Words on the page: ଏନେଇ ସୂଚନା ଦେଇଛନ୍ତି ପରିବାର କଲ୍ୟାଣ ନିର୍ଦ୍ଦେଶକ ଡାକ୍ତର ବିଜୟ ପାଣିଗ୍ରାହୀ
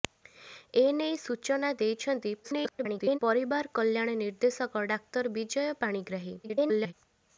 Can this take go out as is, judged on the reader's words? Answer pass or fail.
fail